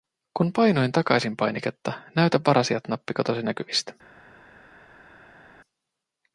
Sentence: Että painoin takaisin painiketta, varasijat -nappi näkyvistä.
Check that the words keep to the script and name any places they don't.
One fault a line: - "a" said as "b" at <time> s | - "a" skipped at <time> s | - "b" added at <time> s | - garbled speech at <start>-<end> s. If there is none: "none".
- "Että" said as "Kun" at 0.4 s
- "näytä" added at 2.1 s
- "katosi" added at 3.1 s